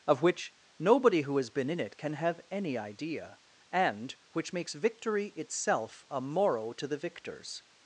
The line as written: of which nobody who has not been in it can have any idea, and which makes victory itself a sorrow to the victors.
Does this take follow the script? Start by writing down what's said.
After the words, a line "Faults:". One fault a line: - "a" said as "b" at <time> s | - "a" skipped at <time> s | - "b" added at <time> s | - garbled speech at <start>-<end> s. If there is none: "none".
of which nobody who has been in it can have any idea, and which makes victory itself a morrow to the victors.
Faults:
- "not" skipped at 1.5 s
- "sorrow" said as "morrow" at 6.2 s